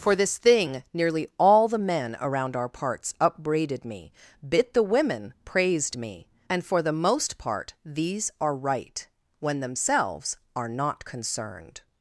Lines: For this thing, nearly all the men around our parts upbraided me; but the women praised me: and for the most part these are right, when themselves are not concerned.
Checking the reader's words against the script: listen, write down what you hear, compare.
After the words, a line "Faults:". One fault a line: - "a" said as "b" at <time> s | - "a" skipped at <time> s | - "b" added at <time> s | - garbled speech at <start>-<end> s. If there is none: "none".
For this thing, nearly all the men around our parts upbraided me; bit the women praised me: and for the most part these are right, when themselves are not concerned.
Faults:
- "but" said as "bit" at 4.4 s